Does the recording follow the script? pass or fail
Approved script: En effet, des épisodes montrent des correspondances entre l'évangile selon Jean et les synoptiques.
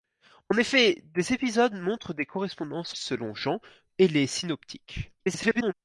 fail